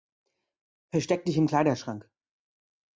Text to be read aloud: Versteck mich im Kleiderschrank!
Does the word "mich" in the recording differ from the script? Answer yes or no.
yes